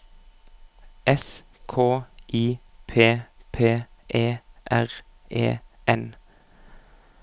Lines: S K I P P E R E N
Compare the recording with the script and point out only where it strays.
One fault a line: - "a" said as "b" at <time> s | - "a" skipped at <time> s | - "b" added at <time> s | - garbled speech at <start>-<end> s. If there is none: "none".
none